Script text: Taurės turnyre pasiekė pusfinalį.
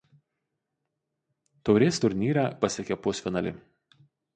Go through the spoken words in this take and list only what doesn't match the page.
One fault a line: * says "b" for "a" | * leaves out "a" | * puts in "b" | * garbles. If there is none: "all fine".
all fine